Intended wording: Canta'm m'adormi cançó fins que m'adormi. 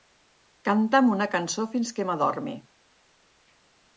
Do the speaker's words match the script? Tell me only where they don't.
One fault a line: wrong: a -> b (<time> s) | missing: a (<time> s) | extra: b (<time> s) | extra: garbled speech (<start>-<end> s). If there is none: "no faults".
wrong: m'adormi -> una (1.1 s)